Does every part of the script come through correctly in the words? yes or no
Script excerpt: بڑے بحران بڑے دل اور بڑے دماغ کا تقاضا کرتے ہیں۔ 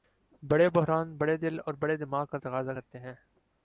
yes